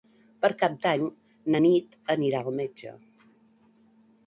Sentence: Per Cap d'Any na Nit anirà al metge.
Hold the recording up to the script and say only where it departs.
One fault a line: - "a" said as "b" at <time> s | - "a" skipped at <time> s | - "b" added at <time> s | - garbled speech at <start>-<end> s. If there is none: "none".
none